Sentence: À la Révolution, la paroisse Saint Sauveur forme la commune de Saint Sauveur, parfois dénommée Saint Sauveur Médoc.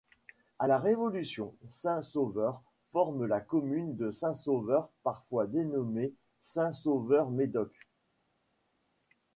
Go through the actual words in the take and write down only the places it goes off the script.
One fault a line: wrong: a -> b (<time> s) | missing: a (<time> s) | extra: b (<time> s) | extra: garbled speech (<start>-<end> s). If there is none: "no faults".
missing: la paroisse (1.6 s)